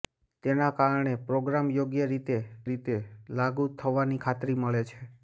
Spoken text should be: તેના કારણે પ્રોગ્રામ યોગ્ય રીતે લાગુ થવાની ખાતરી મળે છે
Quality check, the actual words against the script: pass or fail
fail